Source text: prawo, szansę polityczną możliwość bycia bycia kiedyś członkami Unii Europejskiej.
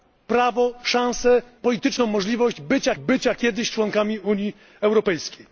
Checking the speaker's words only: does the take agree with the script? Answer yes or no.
yes